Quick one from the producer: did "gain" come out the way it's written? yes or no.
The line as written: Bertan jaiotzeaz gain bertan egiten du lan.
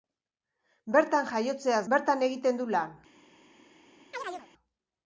no